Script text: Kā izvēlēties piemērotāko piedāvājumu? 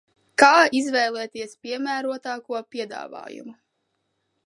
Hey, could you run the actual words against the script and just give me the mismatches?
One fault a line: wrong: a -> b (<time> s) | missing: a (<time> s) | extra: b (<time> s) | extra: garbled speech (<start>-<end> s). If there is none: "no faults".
no faults